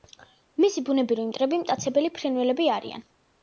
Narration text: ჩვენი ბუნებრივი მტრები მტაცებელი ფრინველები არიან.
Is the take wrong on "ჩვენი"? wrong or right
wrong